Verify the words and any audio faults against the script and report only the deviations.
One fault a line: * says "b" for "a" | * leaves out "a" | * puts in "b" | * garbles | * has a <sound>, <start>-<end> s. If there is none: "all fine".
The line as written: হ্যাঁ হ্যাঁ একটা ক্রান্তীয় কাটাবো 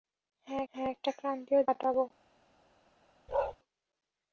* has a bark, 3.3-3.6 s